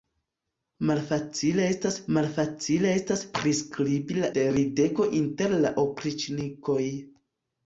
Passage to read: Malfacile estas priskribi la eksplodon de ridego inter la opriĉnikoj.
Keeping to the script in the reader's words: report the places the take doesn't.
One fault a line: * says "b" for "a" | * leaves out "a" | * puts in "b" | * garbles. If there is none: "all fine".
* puts in "malfacile estas"
* leaves out "eksplodon"